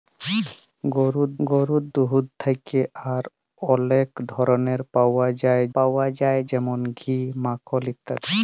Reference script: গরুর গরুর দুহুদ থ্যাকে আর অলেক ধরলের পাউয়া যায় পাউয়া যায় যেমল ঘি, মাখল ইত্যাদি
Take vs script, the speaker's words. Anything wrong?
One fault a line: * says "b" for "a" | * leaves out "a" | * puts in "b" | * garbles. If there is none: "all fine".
all fine